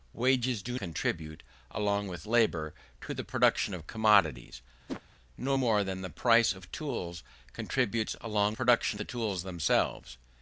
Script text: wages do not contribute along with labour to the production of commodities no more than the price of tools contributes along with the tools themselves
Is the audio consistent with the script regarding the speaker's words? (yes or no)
no